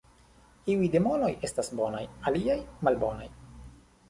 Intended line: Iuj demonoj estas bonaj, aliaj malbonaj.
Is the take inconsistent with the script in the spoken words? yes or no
no